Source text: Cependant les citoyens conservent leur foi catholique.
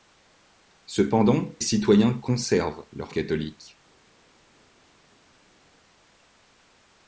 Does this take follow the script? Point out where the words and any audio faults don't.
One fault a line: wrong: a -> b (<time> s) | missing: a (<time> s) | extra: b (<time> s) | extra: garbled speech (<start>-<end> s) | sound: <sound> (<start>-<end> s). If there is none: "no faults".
missing: les (1.5 s)
missing: foi (3.1 s)